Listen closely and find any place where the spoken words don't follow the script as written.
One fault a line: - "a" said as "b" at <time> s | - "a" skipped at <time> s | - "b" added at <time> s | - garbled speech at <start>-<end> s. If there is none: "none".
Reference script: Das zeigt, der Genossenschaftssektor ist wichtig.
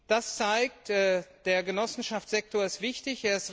none